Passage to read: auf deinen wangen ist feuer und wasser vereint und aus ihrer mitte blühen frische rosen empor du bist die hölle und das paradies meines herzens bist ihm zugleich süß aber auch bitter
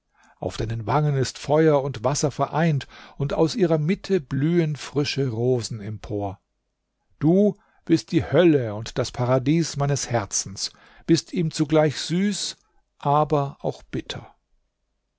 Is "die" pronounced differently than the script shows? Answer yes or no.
no